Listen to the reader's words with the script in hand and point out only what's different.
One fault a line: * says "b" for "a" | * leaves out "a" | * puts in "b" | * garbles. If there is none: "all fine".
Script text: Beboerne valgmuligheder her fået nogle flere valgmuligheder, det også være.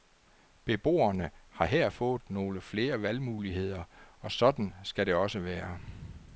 * says "har" for "valgmuligheder"
* puts in "og sådan skal"